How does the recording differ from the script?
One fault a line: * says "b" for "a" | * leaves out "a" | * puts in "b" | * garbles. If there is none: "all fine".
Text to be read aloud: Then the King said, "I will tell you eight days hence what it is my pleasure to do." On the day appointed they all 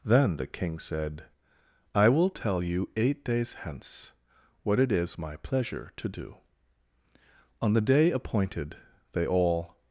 all fine